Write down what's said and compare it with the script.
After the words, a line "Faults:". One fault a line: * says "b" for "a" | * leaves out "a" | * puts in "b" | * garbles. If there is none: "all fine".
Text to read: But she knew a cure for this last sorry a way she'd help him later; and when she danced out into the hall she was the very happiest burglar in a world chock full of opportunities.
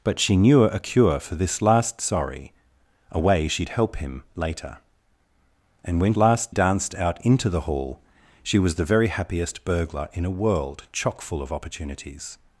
But she knew a cure for this last sorry a way she'd help him later; and when last danced out into the hall she was the very happiest burglar in a world chock full of opportunities.
Faults:
* says "last" for "she"